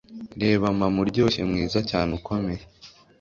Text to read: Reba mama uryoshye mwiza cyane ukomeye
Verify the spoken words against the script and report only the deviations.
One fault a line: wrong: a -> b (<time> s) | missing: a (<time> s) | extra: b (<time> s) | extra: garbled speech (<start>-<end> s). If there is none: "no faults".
no faults